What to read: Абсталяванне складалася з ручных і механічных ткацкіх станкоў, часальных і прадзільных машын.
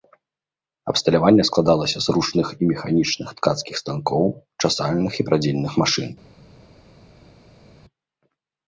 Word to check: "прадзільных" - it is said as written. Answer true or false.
true